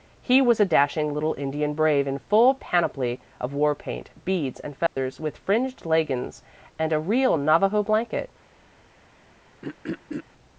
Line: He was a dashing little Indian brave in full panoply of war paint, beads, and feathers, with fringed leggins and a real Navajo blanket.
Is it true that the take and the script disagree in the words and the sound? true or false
true